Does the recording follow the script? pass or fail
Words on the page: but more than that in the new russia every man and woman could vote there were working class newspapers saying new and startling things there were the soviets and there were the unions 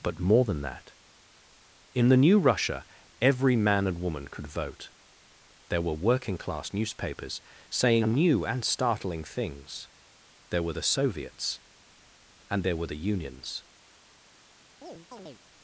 pass